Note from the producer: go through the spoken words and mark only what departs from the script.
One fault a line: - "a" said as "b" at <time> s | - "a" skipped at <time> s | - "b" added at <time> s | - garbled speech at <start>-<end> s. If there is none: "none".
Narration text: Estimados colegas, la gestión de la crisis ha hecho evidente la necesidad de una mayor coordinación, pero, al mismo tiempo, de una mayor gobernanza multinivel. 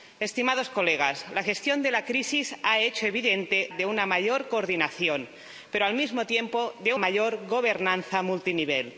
- "la necesidad" skipped at 3.7 s
- "una" skipped at 6.9 s